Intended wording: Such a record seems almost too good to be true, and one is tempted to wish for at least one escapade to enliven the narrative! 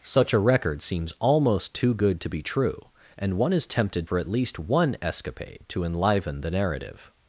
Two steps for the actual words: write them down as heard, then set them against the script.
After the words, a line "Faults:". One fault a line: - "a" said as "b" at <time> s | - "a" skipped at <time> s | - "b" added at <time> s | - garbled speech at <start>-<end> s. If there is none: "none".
Such a record seems almost too good to be true, and one is tempted for at least one escapade to enliven the narrative!
Faults:
- "to wish" skipped at 4.1 s